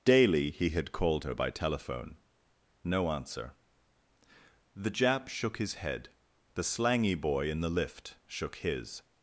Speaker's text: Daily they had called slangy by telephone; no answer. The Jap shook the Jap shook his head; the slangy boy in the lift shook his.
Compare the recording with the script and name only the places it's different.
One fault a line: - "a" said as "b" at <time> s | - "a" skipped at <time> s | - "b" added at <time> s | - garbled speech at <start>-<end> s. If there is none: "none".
- "they" said as "he" at 0.5 s
- "slangy" said as "her" at 1.2 s
- "the Jap shook" skipped at 5.6 s